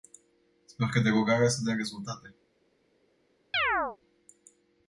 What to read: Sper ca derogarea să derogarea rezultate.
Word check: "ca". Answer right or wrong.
right